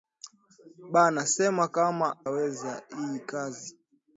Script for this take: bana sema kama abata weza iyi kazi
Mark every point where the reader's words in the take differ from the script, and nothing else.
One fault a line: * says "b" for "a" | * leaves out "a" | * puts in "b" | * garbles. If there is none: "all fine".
* leaves out "abata"